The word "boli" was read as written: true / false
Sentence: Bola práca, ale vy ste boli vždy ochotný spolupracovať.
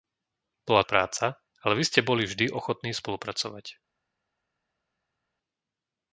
true